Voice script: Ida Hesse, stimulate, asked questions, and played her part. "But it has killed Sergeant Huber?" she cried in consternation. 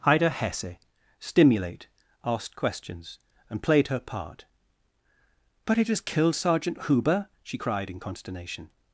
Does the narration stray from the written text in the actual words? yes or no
no